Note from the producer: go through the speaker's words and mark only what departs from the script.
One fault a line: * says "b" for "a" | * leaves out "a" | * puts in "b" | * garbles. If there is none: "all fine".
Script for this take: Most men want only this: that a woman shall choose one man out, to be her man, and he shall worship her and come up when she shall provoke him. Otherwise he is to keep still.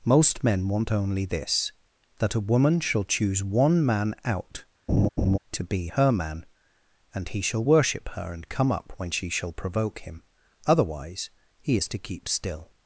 all fine